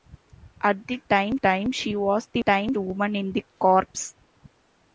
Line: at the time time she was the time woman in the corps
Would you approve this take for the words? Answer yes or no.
yes